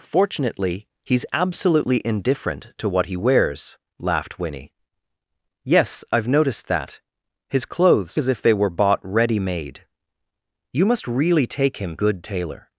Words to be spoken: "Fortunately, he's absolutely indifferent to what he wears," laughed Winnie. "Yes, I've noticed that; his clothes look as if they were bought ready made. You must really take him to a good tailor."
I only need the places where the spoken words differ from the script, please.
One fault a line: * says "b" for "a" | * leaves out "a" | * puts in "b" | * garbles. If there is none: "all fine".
* leaves out "look"
* leaves out "to a"